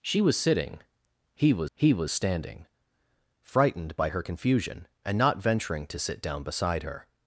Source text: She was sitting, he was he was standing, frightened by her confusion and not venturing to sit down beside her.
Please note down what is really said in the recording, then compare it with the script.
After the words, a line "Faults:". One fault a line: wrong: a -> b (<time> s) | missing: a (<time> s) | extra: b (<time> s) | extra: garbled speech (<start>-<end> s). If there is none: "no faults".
She was sitting, he was he was standing, frightened by her confusion and not venturing to sit down beside her.
Faults:
no faults